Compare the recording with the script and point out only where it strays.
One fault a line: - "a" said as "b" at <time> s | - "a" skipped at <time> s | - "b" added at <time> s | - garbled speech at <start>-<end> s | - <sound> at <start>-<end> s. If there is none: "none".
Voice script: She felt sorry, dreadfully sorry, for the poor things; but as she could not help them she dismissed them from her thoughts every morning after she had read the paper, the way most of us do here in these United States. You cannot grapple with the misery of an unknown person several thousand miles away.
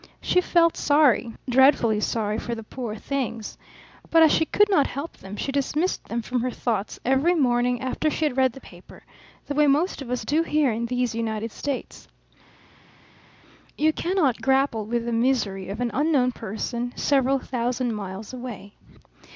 none